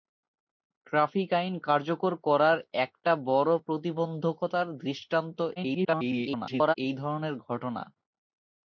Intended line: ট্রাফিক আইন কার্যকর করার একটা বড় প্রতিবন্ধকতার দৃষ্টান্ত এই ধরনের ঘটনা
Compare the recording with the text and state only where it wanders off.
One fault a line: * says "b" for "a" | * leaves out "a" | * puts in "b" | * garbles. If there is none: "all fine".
* garbles